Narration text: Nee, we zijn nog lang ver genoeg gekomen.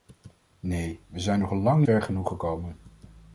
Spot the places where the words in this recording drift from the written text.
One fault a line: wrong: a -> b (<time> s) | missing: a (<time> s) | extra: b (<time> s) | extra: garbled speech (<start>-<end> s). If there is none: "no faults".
no faults